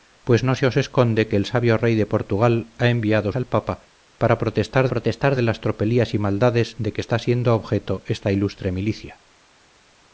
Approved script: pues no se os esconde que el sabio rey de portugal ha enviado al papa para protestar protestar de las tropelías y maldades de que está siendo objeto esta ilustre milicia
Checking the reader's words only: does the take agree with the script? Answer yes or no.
yes